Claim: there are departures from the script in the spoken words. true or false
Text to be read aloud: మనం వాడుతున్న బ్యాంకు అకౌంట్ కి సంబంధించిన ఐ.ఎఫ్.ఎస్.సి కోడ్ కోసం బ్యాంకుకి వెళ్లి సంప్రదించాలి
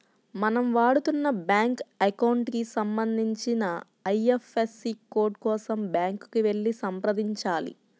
false